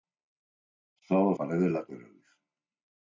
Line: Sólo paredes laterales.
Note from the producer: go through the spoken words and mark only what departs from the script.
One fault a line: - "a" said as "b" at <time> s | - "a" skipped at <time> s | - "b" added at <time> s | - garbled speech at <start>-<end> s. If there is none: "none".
none